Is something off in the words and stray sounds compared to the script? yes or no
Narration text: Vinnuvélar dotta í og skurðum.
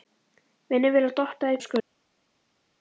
no